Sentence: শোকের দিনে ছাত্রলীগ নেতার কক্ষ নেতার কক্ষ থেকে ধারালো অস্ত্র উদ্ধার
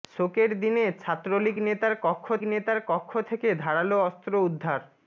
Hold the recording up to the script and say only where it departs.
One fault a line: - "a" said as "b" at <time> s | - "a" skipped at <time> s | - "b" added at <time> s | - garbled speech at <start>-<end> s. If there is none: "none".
none